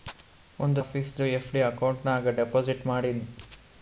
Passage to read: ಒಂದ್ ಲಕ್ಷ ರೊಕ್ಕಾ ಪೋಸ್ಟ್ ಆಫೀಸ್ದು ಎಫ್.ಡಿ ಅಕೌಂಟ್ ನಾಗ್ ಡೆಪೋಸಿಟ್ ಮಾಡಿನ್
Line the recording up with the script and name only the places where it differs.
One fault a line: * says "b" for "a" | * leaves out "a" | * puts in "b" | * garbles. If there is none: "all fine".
* leaves out "ಲಕ್ಷ ರೊಕ್ಕಾ ಪೋಸ್ಟ್"